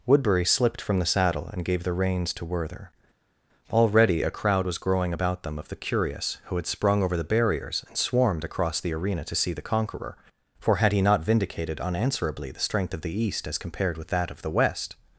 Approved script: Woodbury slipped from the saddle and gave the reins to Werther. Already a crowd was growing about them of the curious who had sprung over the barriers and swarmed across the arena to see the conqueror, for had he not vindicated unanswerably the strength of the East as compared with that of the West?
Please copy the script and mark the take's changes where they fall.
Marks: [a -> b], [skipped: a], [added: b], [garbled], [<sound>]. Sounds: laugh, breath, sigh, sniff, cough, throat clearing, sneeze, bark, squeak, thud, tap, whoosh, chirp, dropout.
Woodbury slipped from the saddle and gave the reins to Werther. Already a crowd was growing about them of the curious who had sprung over the barriers and swarmed across the arena to see the conqueror, for had he not vindicated unanswerably the strength of the East as compared with that of the West?